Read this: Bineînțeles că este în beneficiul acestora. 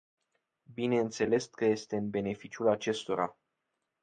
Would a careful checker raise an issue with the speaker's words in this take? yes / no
no